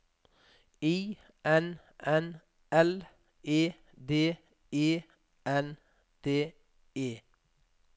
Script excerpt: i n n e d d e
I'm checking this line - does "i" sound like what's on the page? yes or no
yes